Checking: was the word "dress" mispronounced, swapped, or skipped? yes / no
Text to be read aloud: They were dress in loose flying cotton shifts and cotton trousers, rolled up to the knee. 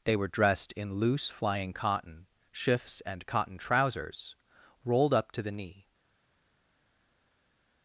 yes